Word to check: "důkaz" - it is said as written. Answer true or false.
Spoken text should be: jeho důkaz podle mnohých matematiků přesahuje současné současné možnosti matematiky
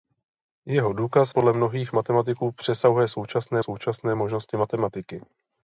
true